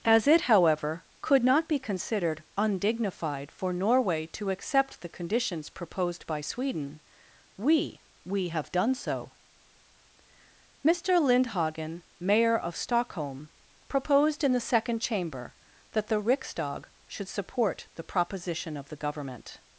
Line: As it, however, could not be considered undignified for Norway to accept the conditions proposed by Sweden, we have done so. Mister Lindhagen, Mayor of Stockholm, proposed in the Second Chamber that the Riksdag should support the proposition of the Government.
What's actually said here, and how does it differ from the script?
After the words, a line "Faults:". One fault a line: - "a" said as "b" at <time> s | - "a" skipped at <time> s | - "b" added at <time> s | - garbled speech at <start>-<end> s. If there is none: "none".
As it, however, could not be considered undignified for Norway to accept the conditions proposed by Sweden, we we have done so. Mister Lindhagen, Mayor of Stockholm, proposed in the Second Chamber that the Riksdag should support the proposition of the Government.
Faults:
- "we" added at 8.3 s